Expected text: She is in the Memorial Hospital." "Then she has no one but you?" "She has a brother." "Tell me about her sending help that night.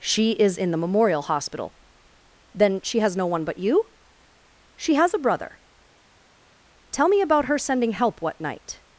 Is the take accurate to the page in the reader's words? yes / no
no